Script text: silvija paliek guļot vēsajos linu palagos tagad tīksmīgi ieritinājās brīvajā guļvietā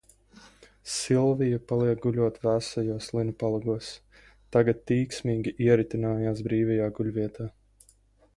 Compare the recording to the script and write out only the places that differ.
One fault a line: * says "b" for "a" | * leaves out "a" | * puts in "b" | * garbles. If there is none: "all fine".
all fine